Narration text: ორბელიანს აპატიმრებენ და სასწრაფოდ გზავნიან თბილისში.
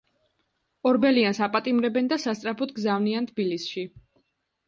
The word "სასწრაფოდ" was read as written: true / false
true